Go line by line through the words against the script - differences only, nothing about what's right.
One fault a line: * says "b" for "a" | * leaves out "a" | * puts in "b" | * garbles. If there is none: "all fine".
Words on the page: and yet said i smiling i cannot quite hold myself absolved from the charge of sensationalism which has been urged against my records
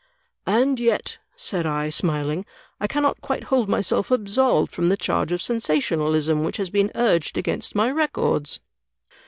all fine